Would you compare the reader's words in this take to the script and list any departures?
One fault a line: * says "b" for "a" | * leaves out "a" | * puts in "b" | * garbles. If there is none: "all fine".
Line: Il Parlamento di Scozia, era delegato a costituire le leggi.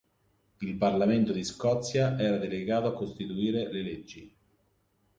all fine